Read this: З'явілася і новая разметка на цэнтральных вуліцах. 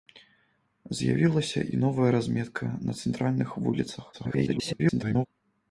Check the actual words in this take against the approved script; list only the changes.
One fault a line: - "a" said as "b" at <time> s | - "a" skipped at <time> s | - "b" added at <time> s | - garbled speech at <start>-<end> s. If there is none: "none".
- garbled speech at 4.1-5.3 s